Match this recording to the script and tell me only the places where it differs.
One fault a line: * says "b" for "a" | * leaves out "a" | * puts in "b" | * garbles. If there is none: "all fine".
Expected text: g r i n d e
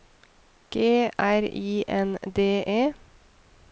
all fine